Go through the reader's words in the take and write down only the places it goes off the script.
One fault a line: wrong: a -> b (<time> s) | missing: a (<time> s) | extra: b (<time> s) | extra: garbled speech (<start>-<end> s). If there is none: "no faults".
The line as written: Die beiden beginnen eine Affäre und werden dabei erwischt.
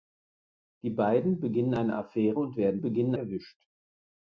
wrong: dabei -> beginnen (2.8 s)